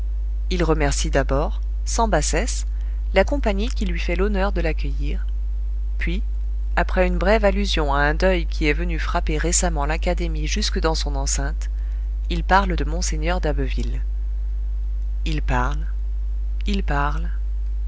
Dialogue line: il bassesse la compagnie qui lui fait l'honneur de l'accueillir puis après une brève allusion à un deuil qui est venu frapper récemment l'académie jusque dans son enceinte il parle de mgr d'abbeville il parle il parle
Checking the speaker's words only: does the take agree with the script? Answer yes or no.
no